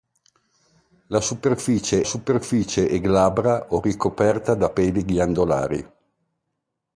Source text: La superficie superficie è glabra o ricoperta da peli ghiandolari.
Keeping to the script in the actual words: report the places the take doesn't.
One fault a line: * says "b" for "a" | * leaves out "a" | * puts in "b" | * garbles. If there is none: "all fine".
all fine